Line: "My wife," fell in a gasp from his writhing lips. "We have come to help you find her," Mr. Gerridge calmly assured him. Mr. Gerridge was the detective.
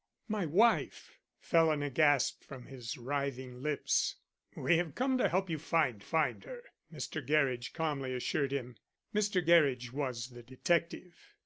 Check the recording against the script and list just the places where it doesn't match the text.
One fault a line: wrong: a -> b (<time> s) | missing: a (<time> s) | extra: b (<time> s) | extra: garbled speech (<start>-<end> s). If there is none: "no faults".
extra: find (6.0 s)